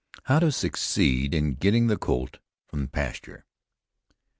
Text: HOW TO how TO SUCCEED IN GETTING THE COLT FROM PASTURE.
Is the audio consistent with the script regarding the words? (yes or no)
no